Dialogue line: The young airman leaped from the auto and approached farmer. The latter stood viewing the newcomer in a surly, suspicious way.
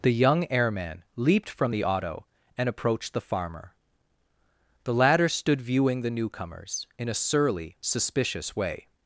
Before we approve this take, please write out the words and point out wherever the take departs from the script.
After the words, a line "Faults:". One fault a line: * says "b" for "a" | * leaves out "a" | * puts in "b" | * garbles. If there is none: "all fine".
The young airman leaped from the auto and approached the farmer. The latter stood viewing the newcomers in a surly, suspicious way.
Faults:
* puts in "the"
* says "newcomers" for "newcomer"